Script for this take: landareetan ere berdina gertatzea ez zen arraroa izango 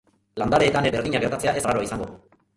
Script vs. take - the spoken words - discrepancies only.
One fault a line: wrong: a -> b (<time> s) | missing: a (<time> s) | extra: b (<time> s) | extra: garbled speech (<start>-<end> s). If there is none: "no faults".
missing: ere (0.9 s)
missing: zen (1.7 s)